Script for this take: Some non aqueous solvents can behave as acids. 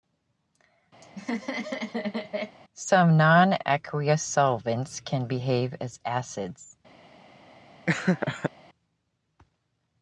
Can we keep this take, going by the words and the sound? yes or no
no